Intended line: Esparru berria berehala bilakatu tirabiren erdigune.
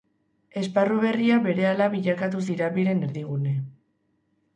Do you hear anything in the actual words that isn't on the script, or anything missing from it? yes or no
no